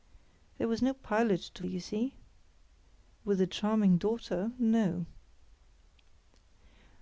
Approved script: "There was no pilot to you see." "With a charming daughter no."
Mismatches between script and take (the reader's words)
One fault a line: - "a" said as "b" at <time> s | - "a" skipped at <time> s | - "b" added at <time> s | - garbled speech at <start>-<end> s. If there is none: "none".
none